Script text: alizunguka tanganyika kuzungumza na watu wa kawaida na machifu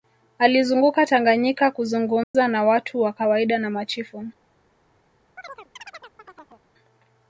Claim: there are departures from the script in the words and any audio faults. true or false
true